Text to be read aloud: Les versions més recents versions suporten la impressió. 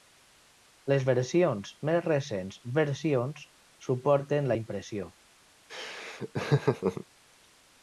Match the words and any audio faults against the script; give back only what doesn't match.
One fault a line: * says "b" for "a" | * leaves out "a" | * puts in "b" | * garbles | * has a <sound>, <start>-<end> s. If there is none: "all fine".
* has a laugh, 5.7-7.0 s